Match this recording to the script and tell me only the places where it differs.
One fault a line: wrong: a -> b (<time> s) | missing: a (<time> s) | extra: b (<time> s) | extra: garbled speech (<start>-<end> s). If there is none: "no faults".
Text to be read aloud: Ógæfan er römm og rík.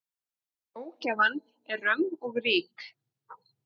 no faults